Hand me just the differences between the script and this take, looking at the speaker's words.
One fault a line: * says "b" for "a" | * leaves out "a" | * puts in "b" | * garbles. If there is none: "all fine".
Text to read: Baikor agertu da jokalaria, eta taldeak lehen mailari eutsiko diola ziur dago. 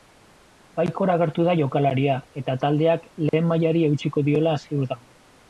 all fine